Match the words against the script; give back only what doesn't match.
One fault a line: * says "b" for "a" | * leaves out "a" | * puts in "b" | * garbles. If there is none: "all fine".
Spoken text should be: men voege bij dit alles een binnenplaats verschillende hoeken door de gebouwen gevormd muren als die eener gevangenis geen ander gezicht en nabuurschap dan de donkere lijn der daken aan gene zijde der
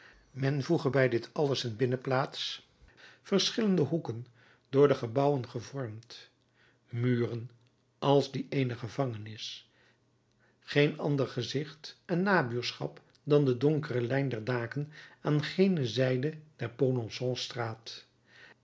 all fine